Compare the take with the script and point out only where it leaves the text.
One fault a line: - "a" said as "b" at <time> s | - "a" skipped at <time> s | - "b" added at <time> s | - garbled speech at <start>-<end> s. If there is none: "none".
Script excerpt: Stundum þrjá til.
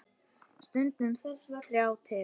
none